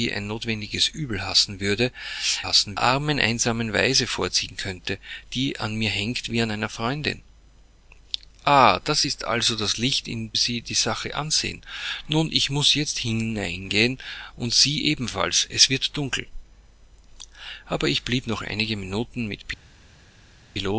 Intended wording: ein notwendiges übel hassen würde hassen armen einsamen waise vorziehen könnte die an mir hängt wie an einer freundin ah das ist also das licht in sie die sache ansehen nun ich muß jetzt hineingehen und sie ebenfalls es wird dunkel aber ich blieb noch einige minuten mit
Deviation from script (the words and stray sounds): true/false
false